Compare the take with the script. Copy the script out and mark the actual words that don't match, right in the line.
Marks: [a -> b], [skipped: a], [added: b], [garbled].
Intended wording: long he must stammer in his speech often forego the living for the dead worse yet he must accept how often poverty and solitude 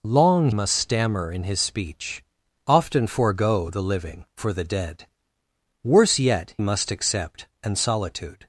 long [skipped: he] must stammer in his speech often forego the living for the dead worse yet [skipped: he] must accept [skipped: how often poverty] and solitude